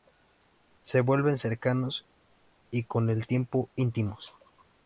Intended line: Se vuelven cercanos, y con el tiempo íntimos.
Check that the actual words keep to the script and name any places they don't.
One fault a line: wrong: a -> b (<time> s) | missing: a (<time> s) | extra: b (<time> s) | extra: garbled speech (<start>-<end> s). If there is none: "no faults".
no faults